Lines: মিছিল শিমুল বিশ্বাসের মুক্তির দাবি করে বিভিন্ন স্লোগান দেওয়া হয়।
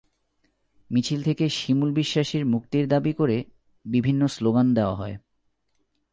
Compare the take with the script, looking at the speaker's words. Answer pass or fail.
fail